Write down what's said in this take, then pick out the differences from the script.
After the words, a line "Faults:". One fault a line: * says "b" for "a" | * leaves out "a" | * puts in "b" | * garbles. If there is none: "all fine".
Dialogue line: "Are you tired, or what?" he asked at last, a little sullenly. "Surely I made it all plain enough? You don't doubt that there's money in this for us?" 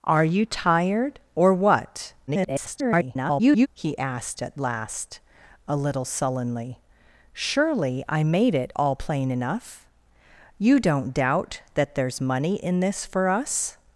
"Are you tired, or what?" [garbled] he asked at last, a little sullenly. "Surely I made it all plain enough? You don't doubt that there's money in this for us?"
Faults:
* garbles